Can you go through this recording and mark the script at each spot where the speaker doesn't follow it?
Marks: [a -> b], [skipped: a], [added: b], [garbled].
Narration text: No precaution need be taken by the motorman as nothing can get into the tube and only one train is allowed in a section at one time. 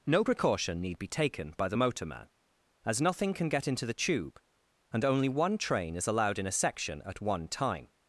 No precaution need be taken by the motorman as nothing can get into the tube and only one train is allowed in a section at one time.